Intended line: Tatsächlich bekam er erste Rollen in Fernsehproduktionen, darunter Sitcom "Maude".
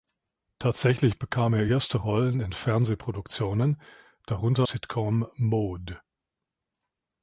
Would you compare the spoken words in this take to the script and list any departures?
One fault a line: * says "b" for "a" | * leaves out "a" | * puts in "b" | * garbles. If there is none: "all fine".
all fine